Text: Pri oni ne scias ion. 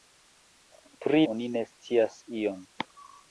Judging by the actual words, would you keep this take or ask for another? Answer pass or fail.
pass